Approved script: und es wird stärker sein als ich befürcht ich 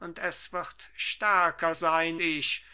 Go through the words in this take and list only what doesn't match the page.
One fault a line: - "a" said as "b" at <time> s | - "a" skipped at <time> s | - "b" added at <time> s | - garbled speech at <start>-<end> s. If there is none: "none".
- "als ich befürcht" skipped at 2.2 s